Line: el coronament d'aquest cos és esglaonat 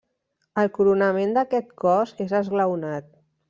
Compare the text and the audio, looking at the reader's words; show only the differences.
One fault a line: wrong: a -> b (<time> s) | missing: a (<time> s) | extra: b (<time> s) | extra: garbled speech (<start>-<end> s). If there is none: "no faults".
no faults